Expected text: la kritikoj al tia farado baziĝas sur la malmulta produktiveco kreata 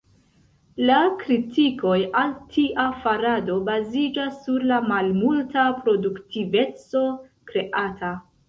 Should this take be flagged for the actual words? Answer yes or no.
no